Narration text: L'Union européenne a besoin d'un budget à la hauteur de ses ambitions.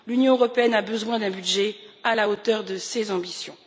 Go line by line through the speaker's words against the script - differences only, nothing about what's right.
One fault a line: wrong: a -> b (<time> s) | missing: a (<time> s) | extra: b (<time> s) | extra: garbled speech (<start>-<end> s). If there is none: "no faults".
no faults